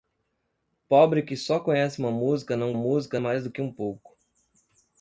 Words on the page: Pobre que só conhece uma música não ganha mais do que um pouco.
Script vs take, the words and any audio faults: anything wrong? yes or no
yes